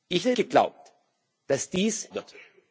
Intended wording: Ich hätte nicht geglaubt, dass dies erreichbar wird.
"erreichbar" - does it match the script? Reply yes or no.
no